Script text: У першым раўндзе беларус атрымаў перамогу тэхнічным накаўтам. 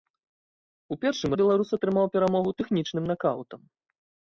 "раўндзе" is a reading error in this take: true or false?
true